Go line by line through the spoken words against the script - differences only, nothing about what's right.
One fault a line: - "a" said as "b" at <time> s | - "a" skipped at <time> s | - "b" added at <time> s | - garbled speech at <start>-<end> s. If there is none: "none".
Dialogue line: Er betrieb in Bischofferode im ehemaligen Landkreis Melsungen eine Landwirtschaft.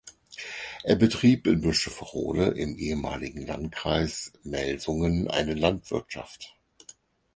none